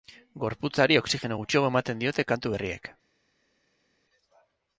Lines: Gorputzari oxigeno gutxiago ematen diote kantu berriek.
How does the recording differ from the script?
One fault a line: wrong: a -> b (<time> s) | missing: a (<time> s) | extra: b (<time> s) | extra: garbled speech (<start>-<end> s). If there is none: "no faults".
no faults